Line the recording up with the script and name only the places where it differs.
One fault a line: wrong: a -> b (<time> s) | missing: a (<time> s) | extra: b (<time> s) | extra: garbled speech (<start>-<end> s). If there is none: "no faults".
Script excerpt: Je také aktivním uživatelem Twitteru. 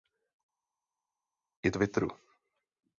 missing: také aktivním uživatelem (1.7 s)